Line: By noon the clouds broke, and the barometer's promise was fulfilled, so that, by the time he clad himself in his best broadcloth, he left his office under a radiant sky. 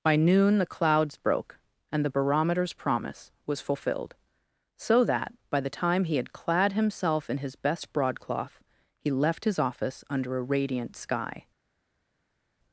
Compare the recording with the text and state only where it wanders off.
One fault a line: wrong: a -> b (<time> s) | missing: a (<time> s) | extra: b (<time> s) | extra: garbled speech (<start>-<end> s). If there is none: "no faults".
extra: had (6.2 s)